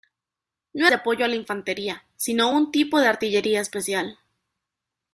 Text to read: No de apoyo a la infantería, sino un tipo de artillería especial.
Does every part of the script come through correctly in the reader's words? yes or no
yes